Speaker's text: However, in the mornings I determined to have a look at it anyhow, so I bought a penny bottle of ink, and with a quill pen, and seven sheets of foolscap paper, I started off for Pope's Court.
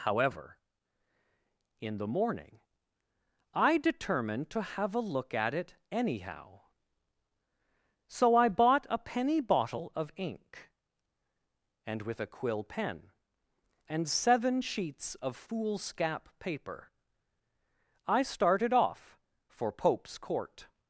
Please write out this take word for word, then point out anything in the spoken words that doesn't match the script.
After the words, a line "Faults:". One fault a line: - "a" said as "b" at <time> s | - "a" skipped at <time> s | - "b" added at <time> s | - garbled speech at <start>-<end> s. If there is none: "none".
However, in the morning I determined to have a look at it anyhow, so I bought a penny bottle of ink, and with a quill pen, and seven sheets of foolscap paper, I started off for Pope's Court.
Faults:
- "mornings" said as "morning" at 2.1 s